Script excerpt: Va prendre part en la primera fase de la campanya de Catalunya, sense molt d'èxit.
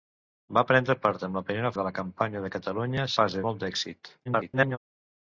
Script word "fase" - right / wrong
wrong